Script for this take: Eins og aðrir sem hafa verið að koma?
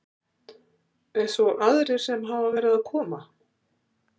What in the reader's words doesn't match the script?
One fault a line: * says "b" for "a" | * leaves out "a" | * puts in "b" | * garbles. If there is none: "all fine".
all fine